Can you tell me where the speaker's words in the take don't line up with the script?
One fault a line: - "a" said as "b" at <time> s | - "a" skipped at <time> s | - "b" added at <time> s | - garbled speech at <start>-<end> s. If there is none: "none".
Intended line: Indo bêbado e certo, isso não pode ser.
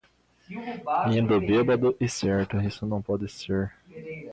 none